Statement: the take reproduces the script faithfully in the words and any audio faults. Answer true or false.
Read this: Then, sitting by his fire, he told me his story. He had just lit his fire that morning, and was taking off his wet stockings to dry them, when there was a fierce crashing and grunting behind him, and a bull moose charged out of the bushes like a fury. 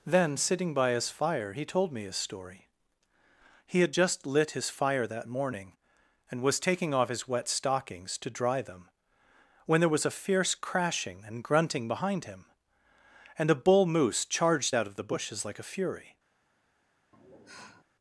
false